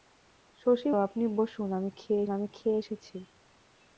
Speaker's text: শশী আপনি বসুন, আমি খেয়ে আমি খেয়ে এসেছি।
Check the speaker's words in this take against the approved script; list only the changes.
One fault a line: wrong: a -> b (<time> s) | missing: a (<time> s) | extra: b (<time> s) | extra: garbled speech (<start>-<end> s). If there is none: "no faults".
no faults